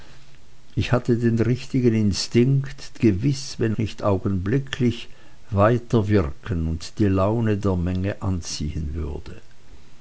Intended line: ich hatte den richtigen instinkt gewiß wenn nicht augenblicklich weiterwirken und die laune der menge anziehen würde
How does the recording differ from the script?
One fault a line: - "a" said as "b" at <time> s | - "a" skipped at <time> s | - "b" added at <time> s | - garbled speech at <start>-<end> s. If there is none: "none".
none